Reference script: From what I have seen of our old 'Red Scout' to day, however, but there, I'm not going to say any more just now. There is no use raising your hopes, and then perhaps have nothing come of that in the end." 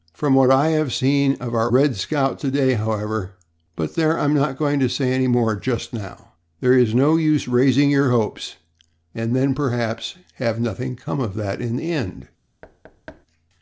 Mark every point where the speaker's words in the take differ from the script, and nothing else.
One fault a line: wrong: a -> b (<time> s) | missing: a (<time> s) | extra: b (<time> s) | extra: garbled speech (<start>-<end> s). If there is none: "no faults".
missing: old (1.7 s)